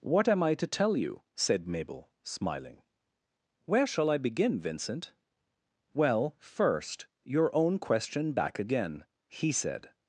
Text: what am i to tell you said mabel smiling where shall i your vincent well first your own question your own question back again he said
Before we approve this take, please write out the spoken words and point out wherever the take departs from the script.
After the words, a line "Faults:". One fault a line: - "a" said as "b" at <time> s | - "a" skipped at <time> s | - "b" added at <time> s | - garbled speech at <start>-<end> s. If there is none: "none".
what am i to tell you said mabel smiling where shall i begin vincent well first your own question back again he said
Faults:
- "your" said as "begin" at 4.2 s
- "your own question" skipped at 8.3 s